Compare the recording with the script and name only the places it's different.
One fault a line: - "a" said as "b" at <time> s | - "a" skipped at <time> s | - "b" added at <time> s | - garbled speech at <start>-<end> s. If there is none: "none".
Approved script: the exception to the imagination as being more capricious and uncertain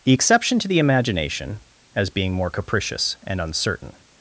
none